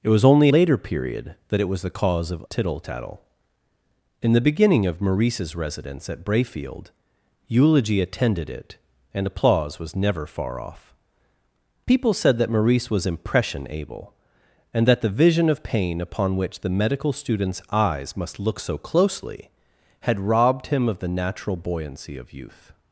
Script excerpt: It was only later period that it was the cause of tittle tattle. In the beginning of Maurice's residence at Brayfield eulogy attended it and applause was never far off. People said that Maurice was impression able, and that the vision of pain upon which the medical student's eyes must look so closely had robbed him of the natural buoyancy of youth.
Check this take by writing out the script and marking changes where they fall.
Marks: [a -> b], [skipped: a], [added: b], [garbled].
It was only later period that it was the cause of tittle tattle. In the beginning of Maurice's residence at Brayfield eulogy attended it and applause was never far off. People said that Maurice was impression able, and that the vision of pain upon which the medical student's eyes must look so closely had robbed him of the natural buoyancy of youth.